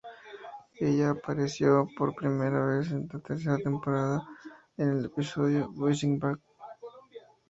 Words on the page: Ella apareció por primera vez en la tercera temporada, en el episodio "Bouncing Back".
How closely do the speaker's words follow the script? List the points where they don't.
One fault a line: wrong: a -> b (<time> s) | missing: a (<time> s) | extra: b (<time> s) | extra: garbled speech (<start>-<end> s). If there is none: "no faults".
no faults